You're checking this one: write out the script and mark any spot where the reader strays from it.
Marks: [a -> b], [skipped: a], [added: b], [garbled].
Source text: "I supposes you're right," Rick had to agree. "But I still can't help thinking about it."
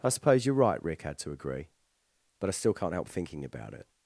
"I [supposes -> suppose] you're right," Rick had to agree. "But I still can't help thinking about it."